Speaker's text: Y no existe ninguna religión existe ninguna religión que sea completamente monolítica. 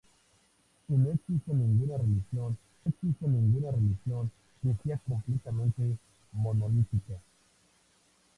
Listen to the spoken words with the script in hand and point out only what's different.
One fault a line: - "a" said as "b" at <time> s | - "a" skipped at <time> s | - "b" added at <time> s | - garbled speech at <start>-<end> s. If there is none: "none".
none